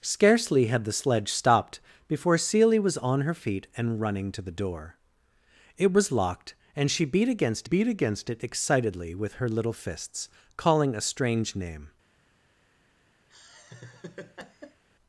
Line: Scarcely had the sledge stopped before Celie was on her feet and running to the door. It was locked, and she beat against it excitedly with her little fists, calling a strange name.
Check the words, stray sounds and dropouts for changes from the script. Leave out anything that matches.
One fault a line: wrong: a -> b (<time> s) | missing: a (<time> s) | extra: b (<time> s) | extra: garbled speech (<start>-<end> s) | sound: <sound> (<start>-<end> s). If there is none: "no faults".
extra: beat against (7.6 s)
sound: laugh (13.3-14.8 s)